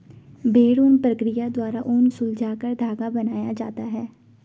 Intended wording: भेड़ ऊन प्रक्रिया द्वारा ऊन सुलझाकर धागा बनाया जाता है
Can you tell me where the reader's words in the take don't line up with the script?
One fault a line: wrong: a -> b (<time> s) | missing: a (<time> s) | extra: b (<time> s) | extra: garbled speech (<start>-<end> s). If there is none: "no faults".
no faults